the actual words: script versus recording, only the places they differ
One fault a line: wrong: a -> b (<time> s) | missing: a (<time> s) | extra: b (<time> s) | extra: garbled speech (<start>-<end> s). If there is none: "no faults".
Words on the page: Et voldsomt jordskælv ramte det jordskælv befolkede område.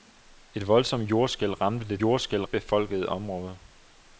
no faults